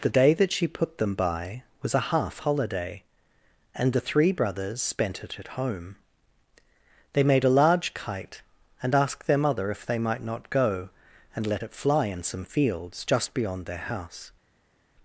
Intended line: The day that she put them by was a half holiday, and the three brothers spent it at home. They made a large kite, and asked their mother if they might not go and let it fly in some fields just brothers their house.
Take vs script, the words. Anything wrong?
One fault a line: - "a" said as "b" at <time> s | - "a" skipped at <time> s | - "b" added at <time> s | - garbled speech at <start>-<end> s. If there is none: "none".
- "brothers" said as "beyond" at 13.3 s